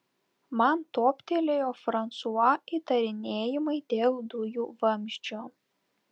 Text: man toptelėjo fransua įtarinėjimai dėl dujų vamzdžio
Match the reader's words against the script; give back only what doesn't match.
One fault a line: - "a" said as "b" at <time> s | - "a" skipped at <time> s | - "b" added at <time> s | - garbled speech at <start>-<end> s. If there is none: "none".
none